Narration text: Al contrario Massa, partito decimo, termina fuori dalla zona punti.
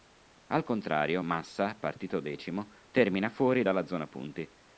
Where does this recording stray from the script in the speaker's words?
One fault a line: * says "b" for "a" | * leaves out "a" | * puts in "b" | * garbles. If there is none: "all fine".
all fine